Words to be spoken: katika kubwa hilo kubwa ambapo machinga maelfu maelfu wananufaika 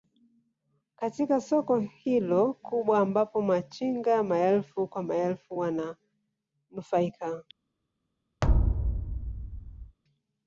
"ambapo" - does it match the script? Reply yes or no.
yes